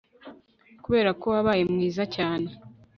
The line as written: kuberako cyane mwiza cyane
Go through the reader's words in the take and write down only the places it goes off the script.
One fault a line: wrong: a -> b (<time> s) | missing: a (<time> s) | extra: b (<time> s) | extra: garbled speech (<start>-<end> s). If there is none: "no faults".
wrong: cyane -> wabaye (1.3 s)